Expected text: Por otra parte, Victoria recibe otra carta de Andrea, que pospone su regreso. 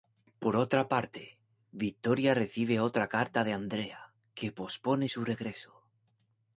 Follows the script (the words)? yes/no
yes